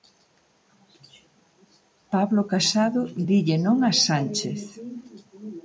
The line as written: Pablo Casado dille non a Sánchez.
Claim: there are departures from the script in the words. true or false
false